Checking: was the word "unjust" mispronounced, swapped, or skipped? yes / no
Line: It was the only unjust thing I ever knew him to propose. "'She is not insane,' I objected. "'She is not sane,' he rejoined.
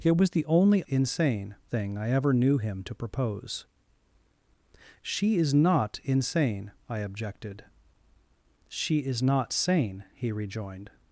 yes